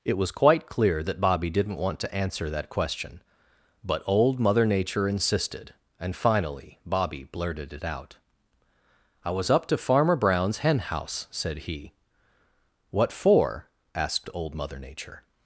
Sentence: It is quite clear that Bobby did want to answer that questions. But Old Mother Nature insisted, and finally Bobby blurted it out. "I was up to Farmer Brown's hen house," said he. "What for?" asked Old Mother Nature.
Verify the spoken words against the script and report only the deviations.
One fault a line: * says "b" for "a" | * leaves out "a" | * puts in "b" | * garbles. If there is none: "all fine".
* says "was" for "is"
* says "didn't" for "did"
* says "question" for "questions"